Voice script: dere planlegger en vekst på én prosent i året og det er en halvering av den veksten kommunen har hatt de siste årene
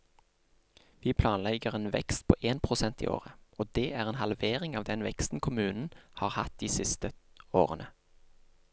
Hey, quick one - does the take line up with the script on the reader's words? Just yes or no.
no